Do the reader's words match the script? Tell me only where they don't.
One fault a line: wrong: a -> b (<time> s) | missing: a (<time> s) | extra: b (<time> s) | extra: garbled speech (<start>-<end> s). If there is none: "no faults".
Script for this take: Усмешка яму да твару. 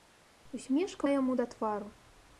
no faults